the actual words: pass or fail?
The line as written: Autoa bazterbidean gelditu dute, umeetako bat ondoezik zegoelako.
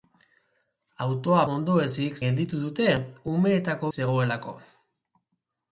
fail